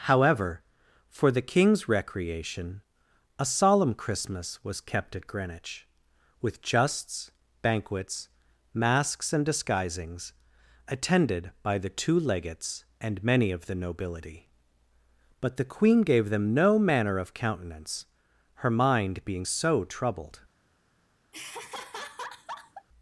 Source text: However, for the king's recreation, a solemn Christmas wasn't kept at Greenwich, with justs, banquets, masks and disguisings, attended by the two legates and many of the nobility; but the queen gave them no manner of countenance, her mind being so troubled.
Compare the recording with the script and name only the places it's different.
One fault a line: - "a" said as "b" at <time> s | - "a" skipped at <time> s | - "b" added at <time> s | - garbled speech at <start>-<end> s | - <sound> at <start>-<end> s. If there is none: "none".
- "wasn't" said as "was" at 4.6 s
- laugh at 21.3-22.9 s